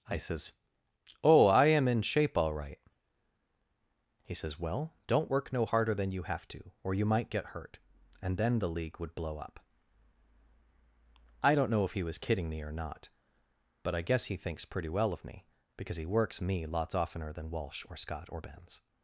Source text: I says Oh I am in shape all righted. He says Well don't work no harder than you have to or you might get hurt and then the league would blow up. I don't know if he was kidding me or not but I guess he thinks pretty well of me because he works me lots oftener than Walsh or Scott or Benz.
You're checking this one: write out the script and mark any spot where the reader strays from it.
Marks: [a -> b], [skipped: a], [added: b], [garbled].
I says Oh I am in shape all [righted. -> right] He says Well don't work no harder than you have to or you might get hurt and then the league would blow up. I don't know if he was kidding me or not but I guess he thinks pretty well of me because he works me lots oftener than Walsh or Scott or Benz.